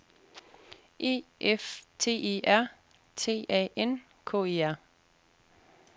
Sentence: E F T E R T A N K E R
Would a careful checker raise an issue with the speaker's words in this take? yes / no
no